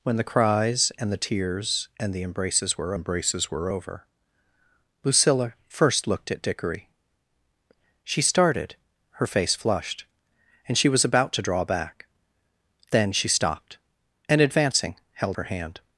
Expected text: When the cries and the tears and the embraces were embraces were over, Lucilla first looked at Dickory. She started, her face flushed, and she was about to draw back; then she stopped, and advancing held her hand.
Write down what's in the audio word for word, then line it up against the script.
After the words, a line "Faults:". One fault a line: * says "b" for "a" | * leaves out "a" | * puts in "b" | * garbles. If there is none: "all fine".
When the cries and the tears and the embraces were embraces were over, Lucilla first looked at Dickory. She started, her face flushed, and she was about to draw back; then she stopped, and advancing held her hand.
Faults:
all fine